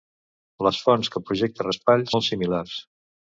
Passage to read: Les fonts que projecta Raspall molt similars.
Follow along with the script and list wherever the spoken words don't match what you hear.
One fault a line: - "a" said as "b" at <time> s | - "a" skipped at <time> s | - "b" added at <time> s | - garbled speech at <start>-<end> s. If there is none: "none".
none